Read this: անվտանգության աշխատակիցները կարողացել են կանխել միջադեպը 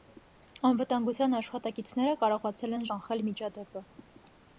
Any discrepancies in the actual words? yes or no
no